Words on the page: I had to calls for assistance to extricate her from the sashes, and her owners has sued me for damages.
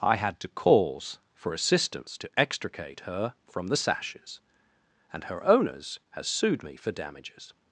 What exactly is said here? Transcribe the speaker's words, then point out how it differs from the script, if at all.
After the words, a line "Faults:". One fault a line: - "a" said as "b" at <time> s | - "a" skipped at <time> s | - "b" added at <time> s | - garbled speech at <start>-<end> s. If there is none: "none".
I had to calls for assistance to extricate her from the sashes, and her owners has sued me for damages.
Faults:
none